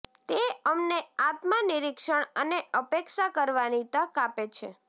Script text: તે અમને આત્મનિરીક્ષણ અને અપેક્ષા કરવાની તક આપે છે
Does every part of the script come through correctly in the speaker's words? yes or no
yes